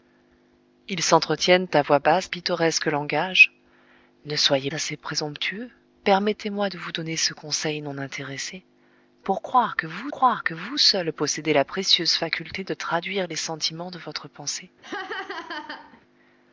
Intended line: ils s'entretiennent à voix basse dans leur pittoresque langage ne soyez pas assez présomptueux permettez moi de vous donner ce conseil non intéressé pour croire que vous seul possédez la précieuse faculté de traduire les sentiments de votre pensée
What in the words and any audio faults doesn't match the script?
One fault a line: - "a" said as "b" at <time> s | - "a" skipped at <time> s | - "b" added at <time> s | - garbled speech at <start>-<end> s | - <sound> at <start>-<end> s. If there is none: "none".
- "dans leur" skipped at 2.3 s
- "pas" skipped at 4.7 s
- "croire que vous" added at 10.1 s
- laugh at 14.8-16.0 s